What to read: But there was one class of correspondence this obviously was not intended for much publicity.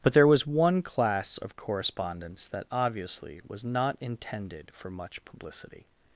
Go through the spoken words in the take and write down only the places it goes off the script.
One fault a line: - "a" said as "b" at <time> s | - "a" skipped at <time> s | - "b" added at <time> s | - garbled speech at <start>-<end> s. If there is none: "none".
- "this" said as "that" at 2.5 s